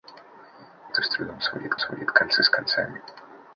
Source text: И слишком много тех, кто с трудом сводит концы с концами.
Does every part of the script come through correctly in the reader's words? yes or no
no